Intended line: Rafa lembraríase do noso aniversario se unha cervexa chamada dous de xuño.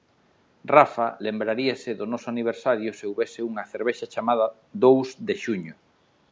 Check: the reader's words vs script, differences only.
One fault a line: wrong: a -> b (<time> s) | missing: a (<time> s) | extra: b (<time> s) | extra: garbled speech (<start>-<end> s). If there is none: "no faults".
extra: houbese (3.1 s)